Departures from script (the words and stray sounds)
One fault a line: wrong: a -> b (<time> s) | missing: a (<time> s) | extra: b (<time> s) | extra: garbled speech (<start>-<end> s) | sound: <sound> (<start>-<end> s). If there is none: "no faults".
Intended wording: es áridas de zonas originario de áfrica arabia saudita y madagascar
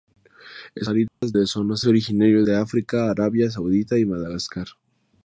sound: dropout (1.1-1.2 s)